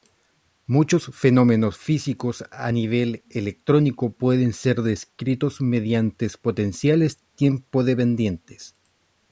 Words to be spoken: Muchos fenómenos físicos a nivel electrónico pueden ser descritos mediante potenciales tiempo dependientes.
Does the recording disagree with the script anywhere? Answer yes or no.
no